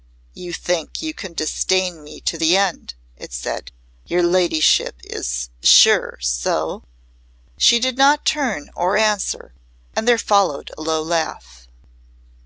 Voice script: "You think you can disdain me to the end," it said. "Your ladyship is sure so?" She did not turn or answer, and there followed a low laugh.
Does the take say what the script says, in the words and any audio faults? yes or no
yes